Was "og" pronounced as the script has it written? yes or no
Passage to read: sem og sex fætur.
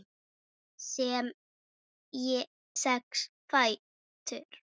no